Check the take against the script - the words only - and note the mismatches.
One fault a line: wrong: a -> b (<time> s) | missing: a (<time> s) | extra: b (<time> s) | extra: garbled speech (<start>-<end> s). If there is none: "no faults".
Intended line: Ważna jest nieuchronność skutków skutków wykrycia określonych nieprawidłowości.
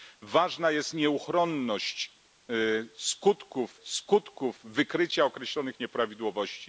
no faults